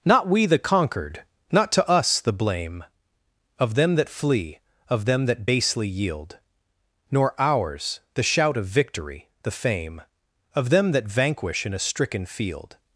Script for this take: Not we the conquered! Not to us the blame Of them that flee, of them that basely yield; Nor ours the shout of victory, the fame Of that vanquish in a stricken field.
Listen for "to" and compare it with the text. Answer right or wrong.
right